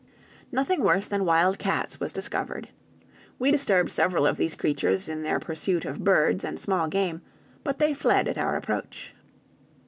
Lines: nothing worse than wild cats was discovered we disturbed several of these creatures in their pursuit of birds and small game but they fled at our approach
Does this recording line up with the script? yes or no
yes